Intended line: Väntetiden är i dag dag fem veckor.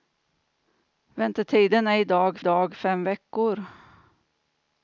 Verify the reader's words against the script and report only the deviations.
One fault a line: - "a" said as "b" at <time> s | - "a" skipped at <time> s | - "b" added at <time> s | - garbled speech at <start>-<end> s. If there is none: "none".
none